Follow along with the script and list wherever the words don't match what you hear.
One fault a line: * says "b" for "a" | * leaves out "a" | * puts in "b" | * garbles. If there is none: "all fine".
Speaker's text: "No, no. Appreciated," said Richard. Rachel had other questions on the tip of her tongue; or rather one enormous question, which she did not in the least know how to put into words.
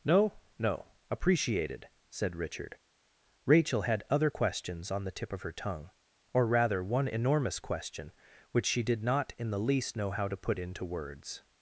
all fine